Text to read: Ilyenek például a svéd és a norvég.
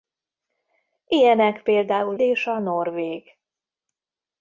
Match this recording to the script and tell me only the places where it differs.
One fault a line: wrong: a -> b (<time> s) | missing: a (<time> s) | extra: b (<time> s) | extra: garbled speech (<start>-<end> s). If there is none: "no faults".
missing: a svéd (2.2 s)